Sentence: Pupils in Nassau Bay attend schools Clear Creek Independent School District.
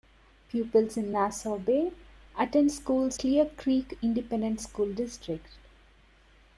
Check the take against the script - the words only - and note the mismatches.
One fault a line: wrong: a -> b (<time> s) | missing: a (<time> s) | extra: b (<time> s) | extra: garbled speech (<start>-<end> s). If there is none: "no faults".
no faults